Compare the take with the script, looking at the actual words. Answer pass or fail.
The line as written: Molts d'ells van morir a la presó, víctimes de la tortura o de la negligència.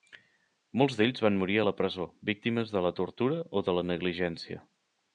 pass